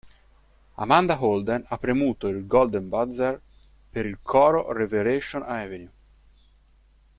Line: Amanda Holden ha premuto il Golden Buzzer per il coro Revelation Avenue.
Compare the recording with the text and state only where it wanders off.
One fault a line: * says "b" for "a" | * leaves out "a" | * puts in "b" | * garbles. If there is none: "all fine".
all fine